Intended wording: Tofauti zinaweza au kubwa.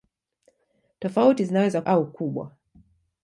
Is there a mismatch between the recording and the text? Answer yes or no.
no